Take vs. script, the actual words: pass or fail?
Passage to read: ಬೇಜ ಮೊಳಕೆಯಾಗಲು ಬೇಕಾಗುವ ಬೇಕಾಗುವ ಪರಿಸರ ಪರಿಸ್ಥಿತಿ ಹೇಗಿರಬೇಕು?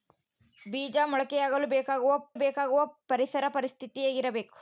pass